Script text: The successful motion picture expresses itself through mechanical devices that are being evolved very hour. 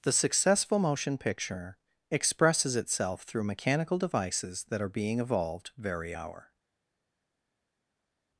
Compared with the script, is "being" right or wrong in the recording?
right